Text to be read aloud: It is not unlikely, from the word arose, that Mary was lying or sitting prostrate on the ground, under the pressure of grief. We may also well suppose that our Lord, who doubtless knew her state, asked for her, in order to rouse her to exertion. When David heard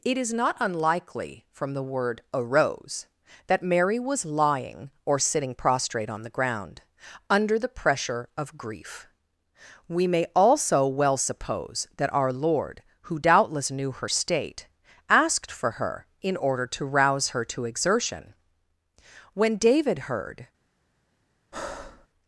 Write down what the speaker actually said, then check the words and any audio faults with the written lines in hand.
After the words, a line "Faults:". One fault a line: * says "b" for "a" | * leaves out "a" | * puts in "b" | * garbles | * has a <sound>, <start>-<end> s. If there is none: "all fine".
It is not unlikely, from the word arose, that Mary was lying or sitting prostrate on the ground, under the pressure of grief. We may also well suppose that our Lord, who doubtless knew her state, asked for her, in order to rouse her to exertion. When David heard
Faults:
* has a breath, 21.5-22.1 s